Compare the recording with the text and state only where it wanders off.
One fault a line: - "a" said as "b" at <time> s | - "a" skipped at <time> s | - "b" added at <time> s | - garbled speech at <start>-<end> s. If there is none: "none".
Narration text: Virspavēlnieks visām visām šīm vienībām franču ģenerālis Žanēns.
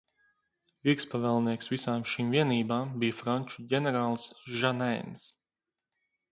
- "visām" skipped at 2.1 s
- "bija" added at 3.0 s